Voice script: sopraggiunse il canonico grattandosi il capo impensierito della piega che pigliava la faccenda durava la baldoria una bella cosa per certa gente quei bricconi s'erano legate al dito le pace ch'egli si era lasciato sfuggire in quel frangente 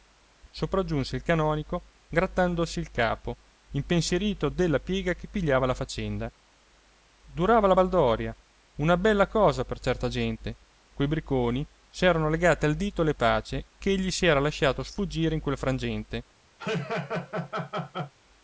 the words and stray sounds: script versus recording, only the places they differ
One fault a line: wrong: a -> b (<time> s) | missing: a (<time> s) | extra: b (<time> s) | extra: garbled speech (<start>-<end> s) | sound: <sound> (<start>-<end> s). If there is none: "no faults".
sound: laugh (16.6-18.1 s)